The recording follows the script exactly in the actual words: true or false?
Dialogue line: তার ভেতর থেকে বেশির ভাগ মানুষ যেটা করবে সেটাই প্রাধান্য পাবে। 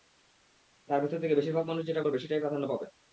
true